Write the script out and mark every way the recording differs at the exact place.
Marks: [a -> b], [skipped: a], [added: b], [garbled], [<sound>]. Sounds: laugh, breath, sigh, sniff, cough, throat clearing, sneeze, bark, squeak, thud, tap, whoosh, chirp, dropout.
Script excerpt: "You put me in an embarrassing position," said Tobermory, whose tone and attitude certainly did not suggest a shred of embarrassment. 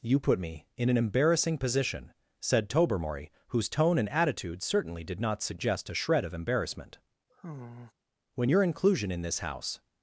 "You put me in an embarrassing position," said Tobermory, whose tone and attitude certainly did not suggest a shred of embarrassment. [sigh] [added: When your inclusion in this house]